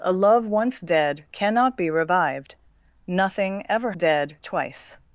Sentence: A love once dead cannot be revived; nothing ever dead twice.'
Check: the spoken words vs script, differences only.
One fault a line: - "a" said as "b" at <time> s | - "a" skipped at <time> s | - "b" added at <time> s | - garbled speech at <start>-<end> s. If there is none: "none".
none